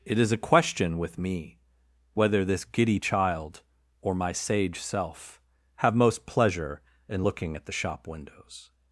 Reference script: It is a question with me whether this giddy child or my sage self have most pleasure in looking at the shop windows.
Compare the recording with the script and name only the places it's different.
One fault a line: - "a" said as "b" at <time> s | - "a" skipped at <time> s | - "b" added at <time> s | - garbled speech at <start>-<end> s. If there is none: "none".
none